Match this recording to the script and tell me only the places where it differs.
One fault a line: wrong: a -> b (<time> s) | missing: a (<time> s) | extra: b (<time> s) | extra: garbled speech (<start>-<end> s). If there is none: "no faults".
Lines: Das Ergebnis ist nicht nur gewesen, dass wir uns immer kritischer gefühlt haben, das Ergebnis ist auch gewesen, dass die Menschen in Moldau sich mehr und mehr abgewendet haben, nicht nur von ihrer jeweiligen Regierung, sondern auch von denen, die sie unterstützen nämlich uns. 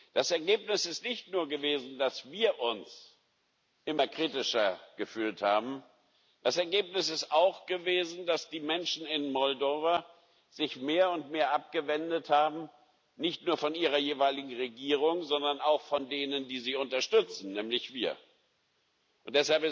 no faults